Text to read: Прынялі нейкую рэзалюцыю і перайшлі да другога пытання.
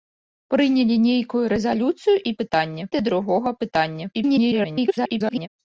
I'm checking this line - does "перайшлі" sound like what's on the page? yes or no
no